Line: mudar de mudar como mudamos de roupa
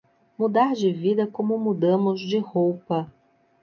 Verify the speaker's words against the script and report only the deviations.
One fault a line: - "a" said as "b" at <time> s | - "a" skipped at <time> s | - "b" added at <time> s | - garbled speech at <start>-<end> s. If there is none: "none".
- "mudar" said as "vida" at 0.9 s